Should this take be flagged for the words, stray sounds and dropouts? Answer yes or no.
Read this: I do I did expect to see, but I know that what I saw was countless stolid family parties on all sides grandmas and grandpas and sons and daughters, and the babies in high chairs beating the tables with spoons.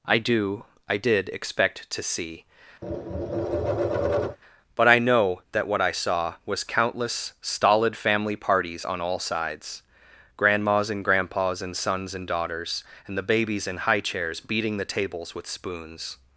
yes